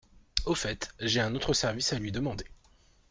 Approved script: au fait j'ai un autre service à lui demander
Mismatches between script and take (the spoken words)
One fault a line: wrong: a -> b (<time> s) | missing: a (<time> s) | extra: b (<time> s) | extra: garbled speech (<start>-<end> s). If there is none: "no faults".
no faults